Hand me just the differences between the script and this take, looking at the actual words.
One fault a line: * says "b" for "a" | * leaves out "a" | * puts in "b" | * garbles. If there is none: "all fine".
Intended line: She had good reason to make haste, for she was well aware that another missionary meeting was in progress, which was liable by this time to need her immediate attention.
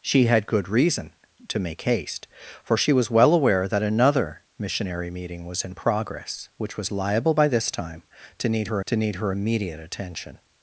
* puts in "to need her"